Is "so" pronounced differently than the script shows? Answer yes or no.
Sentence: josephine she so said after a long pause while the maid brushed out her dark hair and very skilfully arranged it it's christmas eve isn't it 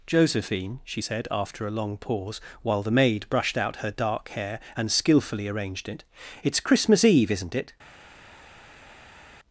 yes